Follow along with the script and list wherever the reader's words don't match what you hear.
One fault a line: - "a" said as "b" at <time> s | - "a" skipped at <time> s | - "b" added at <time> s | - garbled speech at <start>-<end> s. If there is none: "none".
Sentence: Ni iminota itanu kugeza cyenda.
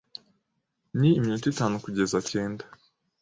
none